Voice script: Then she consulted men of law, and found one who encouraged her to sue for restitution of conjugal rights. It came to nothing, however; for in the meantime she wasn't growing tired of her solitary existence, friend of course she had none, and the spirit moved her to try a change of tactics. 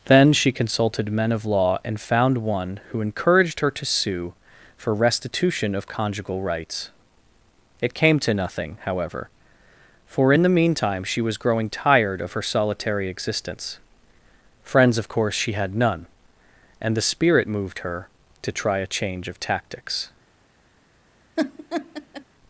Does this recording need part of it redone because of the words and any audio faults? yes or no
yes